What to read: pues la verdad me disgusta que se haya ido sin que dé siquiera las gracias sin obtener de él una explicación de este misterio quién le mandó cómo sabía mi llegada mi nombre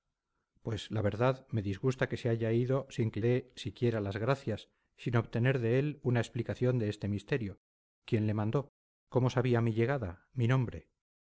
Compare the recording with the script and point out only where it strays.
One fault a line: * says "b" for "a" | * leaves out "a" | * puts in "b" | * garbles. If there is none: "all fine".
all fine